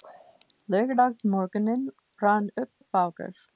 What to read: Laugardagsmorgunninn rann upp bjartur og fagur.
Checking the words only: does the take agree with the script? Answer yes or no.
no